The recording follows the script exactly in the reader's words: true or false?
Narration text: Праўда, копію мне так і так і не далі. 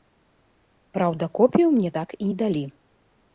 false